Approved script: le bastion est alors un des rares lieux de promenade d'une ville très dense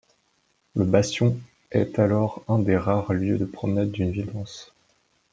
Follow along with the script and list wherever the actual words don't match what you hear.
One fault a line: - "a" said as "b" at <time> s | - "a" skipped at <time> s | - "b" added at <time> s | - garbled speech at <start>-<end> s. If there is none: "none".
- "très" skipped at 4.3 s